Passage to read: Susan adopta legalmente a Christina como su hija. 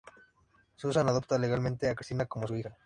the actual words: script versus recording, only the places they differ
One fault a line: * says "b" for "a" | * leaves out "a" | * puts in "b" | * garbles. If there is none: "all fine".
all fine